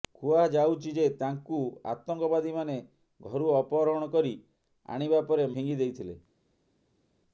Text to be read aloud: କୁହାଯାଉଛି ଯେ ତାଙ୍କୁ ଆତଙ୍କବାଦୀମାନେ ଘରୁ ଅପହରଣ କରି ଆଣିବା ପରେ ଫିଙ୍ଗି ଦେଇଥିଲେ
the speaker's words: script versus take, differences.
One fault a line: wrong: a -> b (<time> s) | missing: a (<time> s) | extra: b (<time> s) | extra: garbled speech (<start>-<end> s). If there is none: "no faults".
no faults